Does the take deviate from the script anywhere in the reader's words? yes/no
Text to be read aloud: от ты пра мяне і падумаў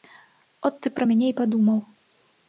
no